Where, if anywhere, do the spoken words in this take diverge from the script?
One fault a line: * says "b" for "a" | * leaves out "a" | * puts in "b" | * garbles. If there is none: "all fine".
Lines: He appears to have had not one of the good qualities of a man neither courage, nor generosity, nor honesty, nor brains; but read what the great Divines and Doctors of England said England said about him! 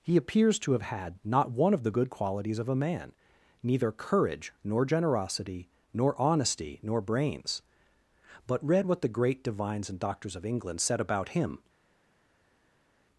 * leaves out "England said"